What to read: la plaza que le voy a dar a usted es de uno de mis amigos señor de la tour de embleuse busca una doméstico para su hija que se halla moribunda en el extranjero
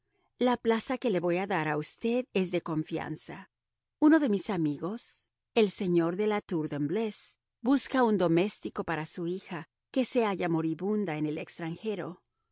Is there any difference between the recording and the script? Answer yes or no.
yes